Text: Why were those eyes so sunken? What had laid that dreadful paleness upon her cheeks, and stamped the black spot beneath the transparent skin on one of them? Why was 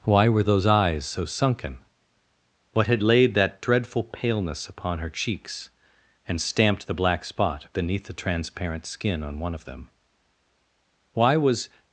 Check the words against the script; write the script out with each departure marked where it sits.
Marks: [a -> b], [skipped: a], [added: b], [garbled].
Why were those eyes so sunken? What had laid that dreadful paleness upon her cheeks, and stamped the black spot beneath the transparent skin on one of them? Why was